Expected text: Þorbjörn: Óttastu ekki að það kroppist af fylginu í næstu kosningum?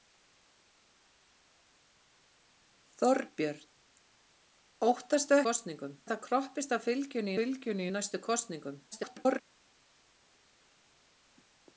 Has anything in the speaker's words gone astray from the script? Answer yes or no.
yes